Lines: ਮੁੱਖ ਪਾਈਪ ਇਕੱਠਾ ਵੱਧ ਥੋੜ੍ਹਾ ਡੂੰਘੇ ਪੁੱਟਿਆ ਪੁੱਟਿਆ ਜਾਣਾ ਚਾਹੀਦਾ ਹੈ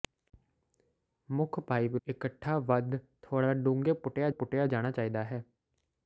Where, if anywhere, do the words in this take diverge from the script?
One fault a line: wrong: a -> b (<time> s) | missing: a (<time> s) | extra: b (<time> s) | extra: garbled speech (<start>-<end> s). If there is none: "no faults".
no faults